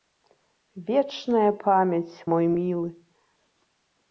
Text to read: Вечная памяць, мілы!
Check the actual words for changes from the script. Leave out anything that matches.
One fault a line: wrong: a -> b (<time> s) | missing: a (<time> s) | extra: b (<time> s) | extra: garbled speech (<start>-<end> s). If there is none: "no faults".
extra: мой (2.3 s)